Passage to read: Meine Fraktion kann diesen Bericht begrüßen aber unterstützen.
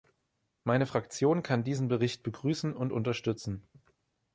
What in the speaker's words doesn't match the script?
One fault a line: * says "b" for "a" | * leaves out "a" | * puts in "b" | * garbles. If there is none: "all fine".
* says "und" for "aber"